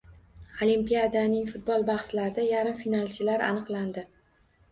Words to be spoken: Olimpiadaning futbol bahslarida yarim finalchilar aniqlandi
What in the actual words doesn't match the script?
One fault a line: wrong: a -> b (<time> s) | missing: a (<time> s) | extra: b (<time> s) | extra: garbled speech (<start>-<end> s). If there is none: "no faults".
no faults